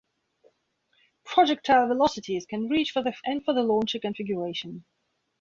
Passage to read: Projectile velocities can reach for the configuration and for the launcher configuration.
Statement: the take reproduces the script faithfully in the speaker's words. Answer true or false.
false